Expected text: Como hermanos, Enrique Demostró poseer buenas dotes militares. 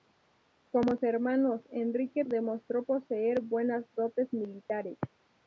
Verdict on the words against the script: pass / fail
pass